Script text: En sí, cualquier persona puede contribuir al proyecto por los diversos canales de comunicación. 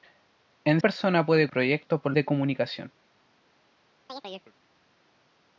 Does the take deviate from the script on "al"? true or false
true